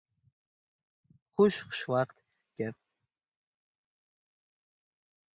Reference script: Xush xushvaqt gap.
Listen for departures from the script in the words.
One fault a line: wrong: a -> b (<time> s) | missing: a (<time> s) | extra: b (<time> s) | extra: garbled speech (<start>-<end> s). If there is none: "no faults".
no faults